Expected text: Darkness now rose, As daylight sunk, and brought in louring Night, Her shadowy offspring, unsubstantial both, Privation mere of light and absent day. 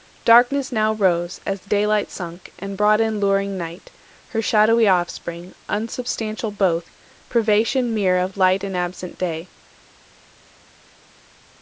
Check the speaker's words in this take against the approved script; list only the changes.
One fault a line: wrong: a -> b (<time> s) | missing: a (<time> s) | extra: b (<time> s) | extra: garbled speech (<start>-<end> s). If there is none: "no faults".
no faults